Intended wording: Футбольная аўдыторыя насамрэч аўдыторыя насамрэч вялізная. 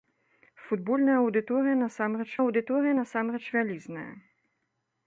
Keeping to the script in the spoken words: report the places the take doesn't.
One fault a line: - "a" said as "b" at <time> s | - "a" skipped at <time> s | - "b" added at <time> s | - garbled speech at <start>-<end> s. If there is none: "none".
none